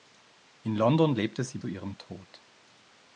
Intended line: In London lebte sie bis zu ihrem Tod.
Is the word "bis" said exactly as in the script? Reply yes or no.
no